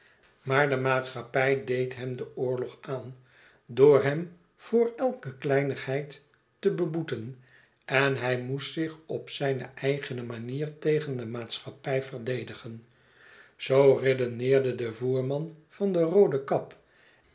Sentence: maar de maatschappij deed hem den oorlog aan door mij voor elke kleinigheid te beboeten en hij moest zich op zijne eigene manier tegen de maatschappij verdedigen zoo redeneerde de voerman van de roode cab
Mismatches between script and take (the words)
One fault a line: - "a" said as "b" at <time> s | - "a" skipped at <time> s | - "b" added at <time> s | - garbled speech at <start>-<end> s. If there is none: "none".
- "mij" said as "hem" at 4.0 s